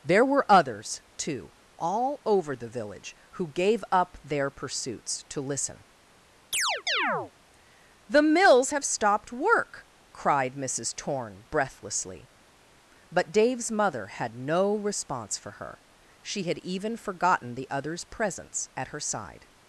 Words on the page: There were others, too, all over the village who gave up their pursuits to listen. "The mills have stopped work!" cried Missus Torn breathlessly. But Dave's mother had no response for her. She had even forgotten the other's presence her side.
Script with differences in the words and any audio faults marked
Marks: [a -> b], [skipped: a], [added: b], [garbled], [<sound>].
There were others, too, all over the village who gave up their pursuits to listen. [chirp] "The mills have stopped work!" cried Missus Torn breathlessly. But Dave's mother had no response for her. She had even forgotten the other's presence [added: at] her side.